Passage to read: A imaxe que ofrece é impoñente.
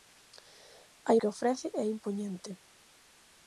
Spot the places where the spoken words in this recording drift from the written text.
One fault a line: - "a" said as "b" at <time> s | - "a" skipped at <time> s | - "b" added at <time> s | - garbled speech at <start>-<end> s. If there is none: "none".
- "imaxe" skipped at 1.1 s